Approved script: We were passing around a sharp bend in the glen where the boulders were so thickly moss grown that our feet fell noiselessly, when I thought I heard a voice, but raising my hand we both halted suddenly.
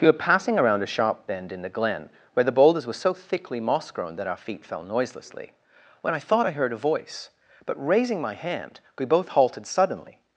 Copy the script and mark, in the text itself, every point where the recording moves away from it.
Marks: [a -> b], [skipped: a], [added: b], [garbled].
We were passing around a sharp bend in the glen where the boulders were so thickly moss grown that our feet fell noiselessly, when I thought I heard a voice, but raising my hand we both halted suddenly.